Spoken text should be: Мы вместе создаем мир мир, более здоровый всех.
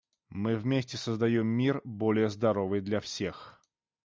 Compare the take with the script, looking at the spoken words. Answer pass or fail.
fail